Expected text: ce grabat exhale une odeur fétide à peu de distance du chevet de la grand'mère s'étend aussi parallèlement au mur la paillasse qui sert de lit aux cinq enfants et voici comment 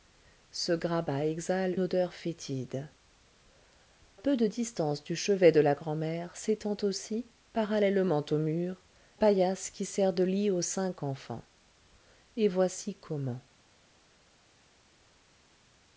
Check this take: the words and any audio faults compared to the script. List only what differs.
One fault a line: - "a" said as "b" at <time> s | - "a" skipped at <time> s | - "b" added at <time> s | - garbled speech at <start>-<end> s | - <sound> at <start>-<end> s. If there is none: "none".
- "une" skipped at 1.8 s
- "à" skipped at 2.9 s
- "la" skipped at 8.8 s